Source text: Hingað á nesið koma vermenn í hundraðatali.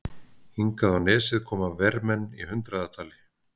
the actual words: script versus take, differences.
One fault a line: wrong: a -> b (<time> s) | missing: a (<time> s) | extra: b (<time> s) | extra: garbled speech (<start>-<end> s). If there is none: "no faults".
no faults